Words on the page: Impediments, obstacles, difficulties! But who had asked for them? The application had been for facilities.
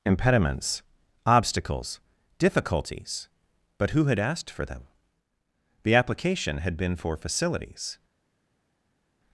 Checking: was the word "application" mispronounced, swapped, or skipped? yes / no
no